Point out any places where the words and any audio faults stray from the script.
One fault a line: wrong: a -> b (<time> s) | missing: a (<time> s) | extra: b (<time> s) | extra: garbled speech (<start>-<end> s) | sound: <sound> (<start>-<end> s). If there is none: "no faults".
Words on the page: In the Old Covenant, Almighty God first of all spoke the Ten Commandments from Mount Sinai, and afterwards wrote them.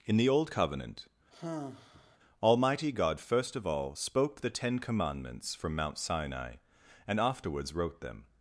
sound: sigh (1.3-2.2 s)